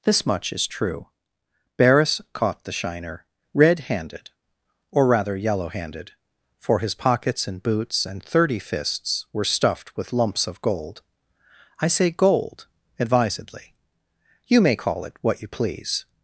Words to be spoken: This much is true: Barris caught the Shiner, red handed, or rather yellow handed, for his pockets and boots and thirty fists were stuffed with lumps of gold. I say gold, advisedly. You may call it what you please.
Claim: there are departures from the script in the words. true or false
false